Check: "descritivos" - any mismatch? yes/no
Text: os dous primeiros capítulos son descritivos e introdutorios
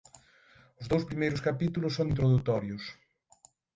yes